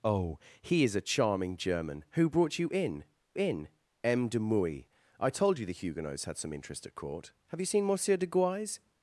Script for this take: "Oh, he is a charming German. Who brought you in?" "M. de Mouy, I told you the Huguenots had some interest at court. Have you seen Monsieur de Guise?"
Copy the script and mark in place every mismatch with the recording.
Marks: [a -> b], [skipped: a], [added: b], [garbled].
"Oh, he is a charming German. Who brought you in?" [added: in] "M. de Mouy, I told you the Huguenots had some interest at court. Have you seen Monsieur de Guise?"